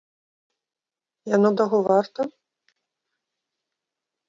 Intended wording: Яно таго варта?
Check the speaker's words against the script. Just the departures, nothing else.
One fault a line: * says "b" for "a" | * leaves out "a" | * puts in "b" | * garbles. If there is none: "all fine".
all fine